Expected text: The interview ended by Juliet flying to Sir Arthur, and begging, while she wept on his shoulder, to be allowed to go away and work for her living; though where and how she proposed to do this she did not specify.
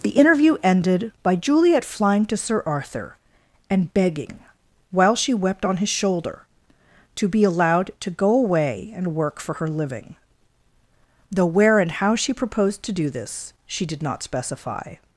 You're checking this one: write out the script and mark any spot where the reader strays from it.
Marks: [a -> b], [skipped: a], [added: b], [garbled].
The interview ended by Juliet flying to Sir Arthur, and begging, while she wept on his shoulder, to be allowed to go away and work for her living; though where and how she proposed to do this she did not specify.